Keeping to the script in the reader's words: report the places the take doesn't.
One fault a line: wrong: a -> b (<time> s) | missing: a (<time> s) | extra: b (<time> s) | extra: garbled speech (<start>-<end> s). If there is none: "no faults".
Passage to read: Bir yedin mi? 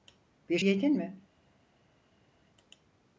no faults